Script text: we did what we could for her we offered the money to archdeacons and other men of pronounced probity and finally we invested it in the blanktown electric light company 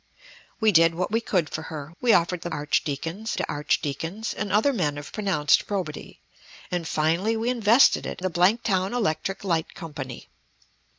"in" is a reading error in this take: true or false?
true